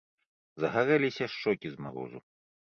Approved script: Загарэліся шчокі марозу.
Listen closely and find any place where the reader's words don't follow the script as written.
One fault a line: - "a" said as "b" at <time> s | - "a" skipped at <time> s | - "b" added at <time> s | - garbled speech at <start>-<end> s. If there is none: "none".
- "з" added at 1.8 s